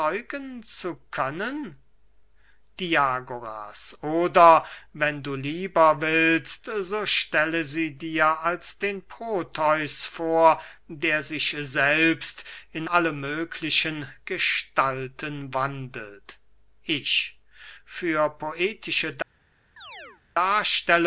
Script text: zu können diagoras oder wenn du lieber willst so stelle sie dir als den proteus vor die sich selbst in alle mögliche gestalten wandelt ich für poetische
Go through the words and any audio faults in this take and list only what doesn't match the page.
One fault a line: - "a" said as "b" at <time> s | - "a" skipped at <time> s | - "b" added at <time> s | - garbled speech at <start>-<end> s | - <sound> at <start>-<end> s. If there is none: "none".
- "die" said as "der" at 10.9 s
- chirp at 19.8-20.2 s